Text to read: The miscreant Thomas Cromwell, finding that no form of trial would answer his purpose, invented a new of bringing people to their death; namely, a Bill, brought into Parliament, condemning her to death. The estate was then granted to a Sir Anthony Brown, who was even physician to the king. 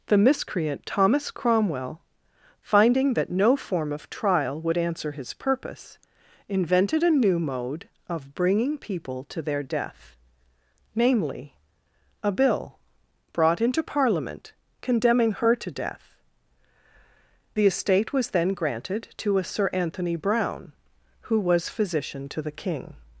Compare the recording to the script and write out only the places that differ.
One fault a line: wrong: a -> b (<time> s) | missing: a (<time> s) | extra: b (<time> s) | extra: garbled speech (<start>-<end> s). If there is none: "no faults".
extra: mode (7.4 s)
missing: even (21.7 s)